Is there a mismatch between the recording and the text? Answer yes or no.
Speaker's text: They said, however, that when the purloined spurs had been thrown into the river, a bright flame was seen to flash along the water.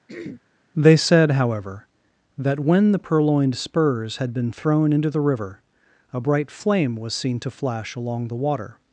no